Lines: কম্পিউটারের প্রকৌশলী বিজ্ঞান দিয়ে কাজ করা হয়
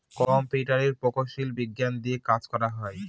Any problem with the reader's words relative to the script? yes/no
no